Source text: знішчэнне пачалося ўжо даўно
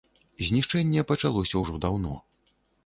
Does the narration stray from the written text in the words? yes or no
no